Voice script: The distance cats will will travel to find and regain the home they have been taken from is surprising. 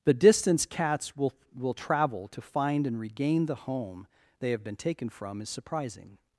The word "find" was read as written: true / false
true